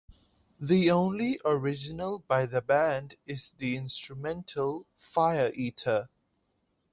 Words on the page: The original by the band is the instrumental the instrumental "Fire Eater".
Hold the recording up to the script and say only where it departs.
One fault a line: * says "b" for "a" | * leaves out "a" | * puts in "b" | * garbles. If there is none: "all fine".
* puts in "only"
* leaves out "the instrumental"